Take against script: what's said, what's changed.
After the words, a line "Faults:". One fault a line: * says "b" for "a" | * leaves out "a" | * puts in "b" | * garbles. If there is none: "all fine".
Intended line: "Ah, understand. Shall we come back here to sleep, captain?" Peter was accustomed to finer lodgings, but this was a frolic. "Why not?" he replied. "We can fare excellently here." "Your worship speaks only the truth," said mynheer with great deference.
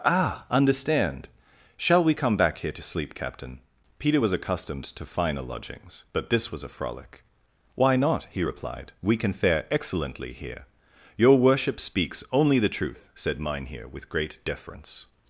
"Ah, understand. Shall we come back here to sleep, captain?" Peter was accustomed to finer lodgings, but this was a frolic. "Why not?" he replied. "We can fare excellently here." "Your worship speaks only the truth," said mynheer with great deference.
Faults:
all fine